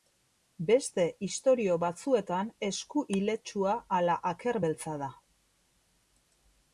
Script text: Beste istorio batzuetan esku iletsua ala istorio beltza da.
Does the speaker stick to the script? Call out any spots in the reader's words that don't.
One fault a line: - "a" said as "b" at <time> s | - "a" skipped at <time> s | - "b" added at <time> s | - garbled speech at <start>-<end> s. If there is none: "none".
- "istorio" said as "aker" at 4.3 s